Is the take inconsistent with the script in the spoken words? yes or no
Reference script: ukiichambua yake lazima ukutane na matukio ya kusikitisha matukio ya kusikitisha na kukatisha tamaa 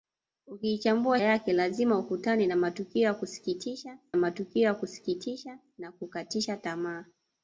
no